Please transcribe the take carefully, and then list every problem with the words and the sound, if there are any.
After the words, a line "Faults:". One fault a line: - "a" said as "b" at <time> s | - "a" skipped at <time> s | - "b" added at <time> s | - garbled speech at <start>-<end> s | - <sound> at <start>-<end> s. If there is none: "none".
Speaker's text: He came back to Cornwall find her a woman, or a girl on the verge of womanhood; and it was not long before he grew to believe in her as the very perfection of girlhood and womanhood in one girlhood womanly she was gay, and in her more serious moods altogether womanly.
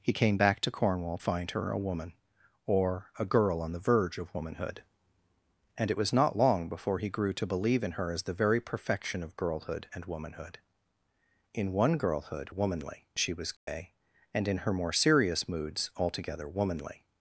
He came back to Cornwall find her a woman, or a girl on the verge of womanhood; and it was not long before he grew to believe in her as the very perfection of girlhood and womanhood in one girlhood womanly she was gay, and in her more serious moods altogether womanly.
Faults:
- dropout at 13.6-13.7 s